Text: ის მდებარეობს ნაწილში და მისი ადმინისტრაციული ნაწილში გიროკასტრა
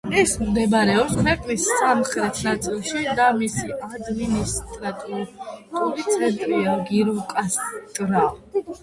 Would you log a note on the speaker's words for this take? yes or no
yes